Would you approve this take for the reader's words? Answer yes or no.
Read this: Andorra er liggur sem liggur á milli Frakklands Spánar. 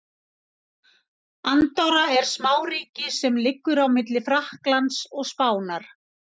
no